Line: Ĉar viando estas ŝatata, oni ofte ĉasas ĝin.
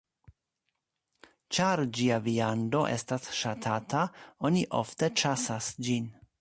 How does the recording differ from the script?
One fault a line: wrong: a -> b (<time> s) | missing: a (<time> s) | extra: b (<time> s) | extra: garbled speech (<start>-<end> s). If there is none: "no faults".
extra: ĝia (2.0 s)